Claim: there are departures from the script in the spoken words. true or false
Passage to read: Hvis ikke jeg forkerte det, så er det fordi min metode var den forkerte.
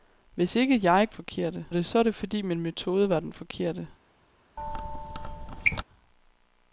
false